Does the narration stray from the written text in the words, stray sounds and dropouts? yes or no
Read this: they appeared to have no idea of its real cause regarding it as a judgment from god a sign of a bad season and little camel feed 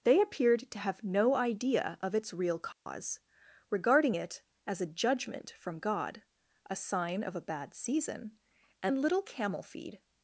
yes